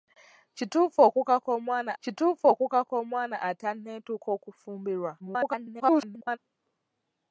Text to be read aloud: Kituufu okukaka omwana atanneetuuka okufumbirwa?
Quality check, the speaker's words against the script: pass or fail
fail